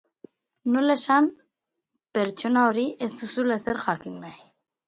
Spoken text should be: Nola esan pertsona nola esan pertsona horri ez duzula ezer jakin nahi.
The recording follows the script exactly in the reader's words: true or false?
false